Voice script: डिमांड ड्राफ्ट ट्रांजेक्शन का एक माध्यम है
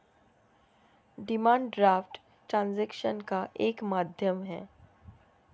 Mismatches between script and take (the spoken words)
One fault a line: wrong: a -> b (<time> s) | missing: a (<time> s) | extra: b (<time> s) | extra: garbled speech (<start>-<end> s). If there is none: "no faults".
no faults